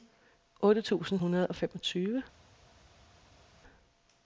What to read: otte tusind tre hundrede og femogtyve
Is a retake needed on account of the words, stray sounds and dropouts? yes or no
yes